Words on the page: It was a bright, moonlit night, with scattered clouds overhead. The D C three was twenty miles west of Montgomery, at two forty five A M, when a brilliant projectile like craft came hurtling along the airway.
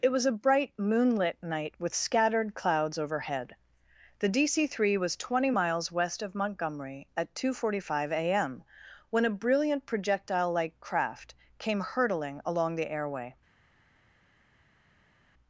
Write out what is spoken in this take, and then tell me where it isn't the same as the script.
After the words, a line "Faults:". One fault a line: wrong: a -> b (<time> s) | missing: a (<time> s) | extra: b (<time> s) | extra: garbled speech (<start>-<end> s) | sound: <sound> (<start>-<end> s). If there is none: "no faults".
It was a bright, moonlit night, with scattered clouds overhead. The D C three was twenty miles west of Montgomery, at two forty five A M, when a brilliant projectile like craft came hurtling along the airway.
Faults:
no faults